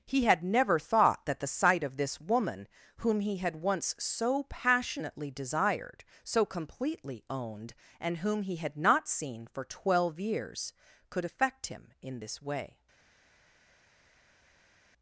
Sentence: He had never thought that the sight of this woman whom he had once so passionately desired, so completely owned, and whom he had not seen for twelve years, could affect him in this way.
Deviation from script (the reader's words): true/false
false